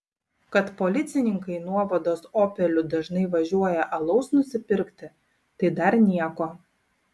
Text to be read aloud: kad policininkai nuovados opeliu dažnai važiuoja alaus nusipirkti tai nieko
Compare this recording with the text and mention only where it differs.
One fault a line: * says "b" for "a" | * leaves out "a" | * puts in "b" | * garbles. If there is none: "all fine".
* puts in "dar"